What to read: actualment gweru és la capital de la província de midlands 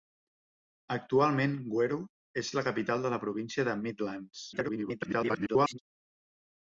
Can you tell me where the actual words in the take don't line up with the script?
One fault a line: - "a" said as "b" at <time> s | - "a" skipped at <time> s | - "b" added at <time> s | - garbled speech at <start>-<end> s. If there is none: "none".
- garbled speech at 4.5-5.8 s